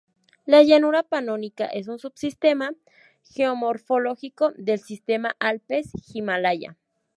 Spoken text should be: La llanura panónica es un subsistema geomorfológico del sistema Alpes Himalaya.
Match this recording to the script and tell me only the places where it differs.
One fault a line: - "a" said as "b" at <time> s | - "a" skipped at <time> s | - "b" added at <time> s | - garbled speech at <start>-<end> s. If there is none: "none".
none